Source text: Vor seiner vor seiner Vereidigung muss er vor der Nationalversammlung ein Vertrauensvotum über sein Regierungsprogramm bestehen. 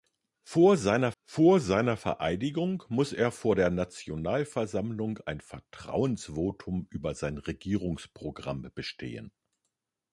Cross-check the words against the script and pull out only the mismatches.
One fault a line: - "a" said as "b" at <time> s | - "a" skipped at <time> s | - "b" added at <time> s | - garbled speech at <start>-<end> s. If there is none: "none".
none